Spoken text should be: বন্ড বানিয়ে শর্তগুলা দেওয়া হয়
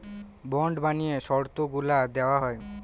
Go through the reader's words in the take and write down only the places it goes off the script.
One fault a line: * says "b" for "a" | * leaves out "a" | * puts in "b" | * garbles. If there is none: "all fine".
all fine